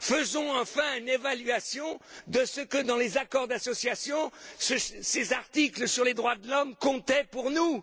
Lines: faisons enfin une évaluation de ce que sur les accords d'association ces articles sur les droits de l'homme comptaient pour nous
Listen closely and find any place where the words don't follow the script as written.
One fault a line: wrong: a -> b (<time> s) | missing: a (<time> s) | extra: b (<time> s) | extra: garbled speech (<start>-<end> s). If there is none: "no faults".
wrong: sur -> dans (2.8 s)